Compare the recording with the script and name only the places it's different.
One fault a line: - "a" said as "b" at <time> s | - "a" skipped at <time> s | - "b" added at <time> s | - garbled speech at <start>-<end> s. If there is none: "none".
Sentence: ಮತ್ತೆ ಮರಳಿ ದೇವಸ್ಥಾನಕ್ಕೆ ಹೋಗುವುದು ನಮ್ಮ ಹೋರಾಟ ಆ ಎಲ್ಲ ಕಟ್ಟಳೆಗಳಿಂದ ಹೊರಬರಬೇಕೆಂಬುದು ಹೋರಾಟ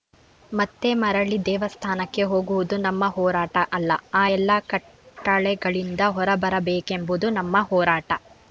- "ಅಲ್ಲ" added at 3.7 s
- "ನಮ್ಮ" added at 7.4 s